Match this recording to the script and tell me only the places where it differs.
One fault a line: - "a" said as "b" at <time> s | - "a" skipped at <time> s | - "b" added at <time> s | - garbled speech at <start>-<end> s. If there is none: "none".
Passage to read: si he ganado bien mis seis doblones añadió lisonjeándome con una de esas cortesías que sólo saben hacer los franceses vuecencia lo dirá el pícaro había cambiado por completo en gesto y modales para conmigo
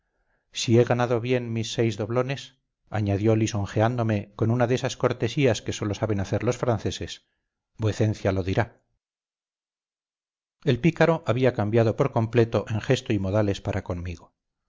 none